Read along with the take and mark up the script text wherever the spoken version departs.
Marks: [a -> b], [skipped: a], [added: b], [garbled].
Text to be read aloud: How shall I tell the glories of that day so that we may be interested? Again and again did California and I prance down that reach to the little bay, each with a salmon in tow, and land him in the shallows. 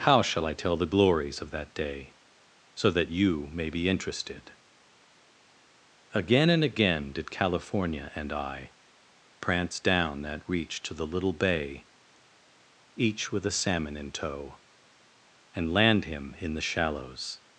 How shall I tell the glories of that day so that [we -> you] may be interested? Again and again did California and I prance down that reach to the little bay, each with a salmon in tow, and land him in the shallows.